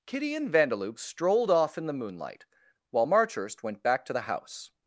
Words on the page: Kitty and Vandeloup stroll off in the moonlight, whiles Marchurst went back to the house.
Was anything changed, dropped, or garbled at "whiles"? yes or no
yes